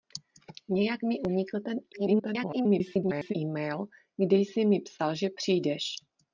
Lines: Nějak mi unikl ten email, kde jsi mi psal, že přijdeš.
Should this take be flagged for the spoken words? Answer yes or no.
yes